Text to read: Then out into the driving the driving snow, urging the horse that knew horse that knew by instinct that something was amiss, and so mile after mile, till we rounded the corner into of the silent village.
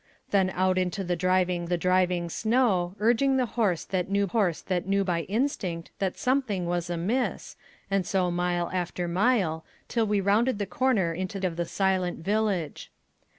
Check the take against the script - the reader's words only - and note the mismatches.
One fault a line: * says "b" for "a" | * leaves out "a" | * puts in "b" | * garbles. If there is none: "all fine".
all fine